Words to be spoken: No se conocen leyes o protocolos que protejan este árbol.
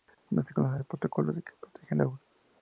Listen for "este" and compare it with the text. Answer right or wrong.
wrong